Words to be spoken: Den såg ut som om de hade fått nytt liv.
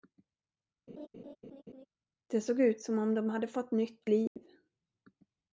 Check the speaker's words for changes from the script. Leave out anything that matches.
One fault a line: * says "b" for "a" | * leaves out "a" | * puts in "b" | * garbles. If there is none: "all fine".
* says "Det" for "Den"